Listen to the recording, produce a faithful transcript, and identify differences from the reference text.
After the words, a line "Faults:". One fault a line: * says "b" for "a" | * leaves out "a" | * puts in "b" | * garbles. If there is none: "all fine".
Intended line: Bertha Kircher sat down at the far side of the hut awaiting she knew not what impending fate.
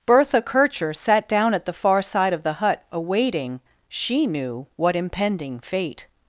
Bertha Kircher sat down at the far side of the hut awaiting she knew what impending fate.
Faults:
* leaves out "not"